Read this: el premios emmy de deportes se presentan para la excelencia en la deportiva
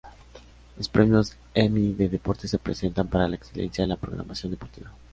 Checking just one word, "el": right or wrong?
wrong